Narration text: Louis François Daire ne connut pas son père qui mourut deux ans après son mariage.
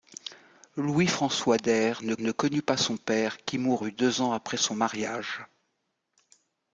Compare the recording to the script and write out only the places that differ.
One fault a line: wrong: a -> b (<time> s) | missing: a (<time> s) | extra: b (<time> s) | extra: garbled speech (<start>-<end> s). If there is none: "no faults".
extra: ne (2.2 s)